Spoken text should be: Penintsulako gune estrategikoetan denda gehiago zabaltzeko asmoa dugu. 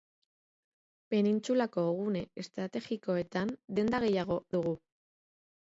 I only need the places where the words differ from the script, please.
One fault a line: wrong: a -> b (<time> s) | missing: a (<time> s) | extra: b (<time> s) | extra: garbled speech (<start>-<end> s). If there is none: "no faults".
missing: zabaltzeko asmoa (4.4 s)